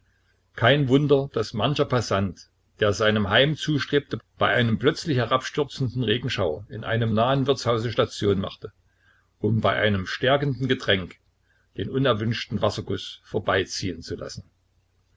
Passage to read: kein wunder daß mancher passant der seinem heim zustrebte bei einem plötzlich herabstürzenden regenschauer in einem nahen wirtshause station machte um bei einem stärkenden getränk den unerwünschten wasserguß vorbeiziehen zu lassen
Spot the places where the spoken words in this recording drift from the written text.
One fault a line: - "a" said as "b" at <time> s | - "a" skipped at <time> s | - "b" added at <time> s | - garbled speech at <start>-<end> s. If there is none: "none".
none